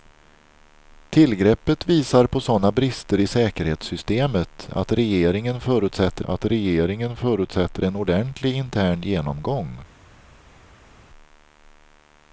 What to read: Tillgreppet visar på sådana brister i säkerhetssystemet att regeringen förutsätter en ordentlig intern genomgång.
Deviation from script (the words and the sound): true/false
true